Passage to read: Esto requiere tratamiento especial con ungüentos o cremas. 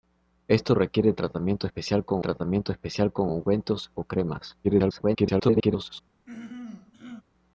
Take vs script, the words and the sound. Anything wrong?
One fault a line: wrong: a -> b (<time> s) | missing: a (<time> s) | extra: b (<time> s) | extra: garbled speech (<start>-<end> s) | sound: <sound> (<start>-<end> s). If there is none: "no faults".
extra: tratamiento especial con (2.2 s)
extra: garbled speech (4.6-6.0 s)
sound: throat clearing (6.3-7.2 s)